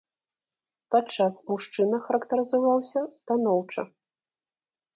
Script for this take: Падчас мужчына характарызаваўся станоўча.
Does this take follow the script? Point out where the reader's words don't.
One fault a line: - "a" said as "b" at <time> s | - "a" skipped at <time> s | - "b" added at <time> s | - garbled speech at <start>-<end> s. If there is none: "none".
none